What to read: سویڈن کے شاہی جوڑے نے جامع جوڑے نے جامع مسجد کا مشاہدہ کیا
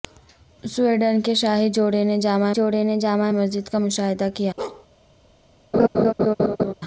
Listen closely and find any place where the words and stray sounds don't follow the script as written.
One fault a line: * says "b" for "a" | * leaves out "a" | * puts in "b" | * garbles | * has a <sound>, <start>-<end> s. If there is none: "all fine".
* has a bark, 4.6-4.9 s
* has a laugh, 5.7-6.7 s